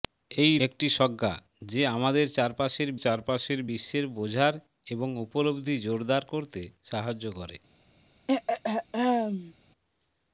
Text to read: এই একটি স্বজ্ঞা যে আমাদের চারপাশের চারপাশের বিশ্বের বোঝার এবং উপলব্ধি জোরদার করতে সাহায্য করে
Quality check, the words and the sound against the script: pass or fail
fail